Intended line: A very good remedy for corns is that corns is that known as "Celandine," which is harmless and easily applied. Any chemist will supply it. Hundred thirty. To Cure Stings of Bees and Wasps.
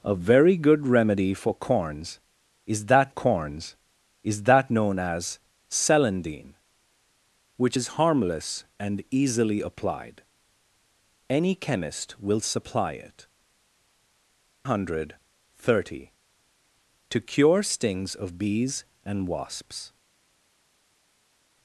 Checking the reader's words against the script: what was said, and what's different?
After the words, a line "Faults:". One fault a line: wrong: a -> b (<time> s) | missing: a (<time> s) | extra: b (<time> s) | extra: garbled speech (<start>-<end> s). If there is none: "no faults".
A very good remedy for corns is that corns is that known as "Celandine," which is harmless and easily applied. Any chemist will supply it. Hundred thirty. To Cure Stings of Bees and Wasps.
Faults:
no faults